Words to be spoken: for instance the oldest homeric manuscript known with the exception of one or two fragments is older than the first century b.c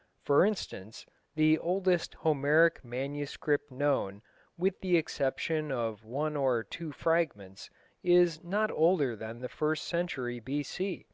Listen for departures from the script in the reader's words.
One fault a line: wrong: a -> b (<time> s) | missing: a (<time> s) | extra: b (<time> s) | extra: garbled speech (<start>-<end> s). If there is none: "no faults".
extra: not (8.4 s)